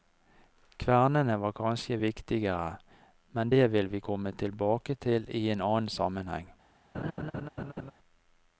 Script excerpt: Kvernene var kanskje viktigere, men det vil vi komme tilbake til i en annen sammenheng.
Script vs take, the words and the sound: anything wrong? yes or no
yes